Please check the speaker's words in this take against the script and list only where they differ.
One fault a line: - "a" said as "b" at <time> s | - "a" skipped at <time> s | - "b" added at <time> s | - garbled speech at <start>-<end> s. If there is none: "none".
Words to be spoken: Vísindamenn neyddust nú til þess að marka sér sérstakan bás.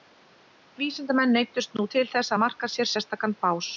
none